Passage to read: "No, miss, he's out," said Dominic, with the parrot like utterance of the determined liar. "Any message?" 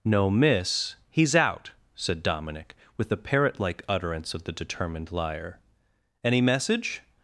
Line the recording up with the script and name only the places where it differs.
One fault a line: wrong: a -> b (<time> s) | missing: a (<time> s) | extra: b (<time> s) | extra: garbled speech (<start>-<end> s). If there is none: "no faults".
no faults